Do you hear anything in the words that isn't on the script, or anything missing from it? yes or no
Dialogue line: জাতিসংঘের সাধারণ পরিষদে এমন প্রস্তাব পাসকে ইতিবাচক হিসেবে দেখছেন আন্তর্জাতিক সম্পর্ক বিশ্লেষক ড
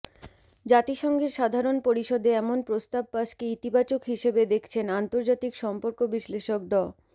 no